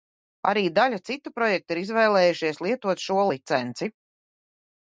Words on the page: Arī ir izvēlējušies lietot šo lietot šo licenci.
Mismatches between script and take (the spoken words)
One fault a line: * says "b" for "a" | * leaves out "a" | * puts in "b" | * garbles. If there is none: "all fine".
* puts in "daļa citu projektu"
* leaves out "lietot šo"